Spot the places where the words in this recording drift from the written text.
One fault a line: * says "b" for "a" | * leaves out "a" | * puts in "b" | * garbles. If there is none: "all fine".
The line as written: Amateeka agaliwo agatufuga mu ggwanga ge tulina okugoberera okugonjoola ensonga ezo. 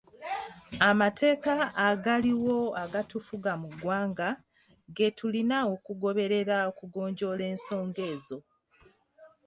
all fine